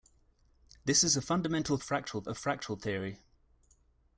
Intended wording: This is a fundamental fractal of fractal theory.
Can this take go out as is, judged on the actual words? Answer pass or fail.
pass